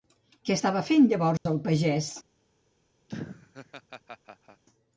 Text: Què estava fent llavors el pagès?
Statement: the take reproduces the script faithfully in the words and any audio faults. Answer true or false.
false